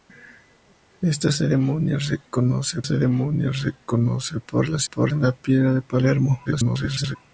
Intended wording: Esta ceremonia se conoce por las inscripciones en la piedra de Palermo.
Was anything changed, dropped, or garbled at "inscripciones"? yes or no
yes